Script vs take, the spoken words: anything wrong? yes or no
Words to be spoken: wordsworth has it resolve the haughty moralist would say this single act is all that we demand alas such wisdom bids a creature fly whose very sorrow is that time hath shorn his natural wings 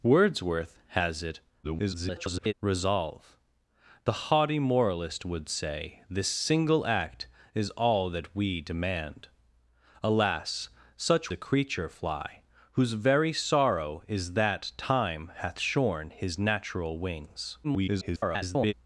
yes